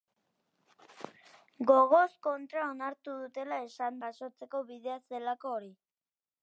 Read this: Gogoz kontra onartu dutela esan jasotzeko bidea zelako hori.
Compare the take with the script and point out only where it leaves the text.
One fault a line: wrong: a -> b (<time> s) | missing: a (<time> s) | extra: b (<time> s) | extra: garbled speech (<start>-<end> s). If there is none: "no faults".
no faults